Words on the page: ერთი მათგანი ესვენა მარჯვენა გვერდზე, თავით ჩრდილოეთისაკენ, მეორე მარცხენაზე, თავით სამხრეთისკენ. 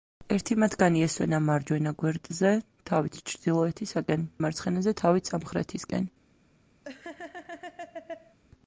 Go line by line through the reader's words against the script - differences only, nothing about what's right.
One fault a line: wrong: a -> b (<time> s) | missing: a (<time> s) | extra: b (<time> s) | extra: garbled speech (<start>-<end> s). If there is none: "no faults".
missing: მეორე (4.2 s)